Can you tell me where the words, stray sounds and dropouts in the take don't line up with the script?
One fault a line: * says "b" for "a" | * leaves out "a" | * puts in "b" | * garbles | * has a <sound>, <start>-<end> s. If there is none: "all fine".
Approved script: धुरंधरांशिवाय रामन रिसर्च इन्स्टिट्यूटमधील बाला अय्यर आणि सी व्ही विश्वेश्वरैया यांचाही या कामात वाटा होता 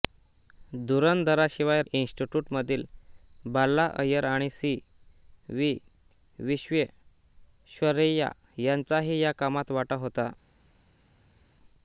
* leaves out "रामन रिसर्च"